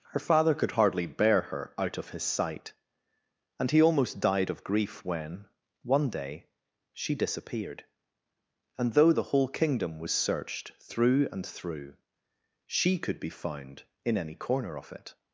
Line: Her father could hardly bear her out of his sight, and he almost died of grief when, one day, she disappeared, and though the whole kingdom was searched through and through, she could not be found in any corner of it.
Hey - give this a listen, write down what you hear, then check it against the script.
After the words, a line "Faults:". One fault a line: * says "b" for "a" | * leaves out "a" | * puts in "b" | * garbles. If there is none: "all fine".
Her father could hardly bear her out of his sight, and he almost died of grief when, one day, she disappeared, and though the whole kingdom was searched through and through, she could be found in any corner of it.
Faults:
* leaves out "not"